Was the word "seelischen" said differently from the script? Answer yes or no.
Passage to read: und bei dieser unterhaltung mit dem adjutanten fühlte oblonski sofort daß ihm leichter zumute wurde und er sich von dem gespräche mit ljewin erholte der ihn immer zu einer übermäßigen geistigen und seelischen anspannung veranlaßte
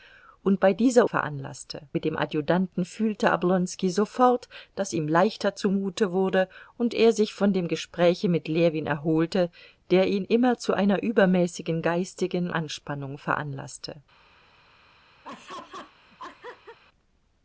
yes